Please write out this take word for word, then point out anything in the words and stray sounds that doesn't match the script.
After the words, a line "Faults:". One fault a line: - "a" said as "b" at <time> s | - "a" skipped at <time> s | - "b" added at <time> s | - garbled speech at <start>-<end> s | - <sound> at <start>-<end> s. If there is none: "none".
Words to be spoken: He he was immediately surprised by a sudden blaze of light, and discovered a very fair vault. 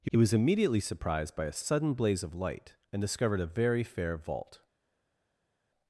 He he was immediately surprised by a sudden blaze of light, and discovered a very fair vault.
Faults:
none